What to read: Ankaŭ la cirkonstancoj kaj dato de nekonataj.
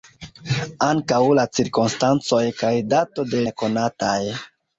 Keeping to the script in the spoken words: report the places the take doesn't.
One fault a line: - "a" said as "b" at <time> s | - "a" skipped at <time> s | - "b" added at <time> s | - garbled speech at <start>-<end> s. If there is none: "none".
none